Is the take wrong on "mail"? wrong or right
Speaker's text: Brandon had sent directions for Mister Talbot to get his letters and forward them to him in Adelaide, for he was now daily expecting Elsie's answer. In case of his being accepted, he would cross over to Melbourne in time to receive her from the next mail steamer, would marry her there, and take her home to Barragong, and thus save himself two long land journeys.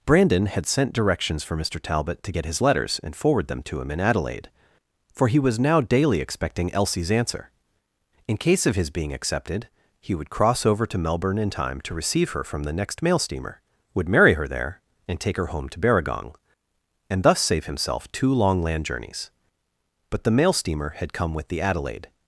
right